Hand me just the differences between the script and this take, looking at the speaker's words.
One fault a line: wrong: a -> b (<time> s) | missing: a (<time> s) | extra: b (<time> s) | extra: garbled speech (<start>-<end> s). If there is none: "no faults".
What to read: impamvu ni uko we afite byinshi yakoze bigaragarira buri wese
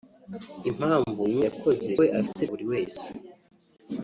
wrong: uko -> yakoze (1.5 s)
missing: byinshi yakoze bigaragarira (2.4 s)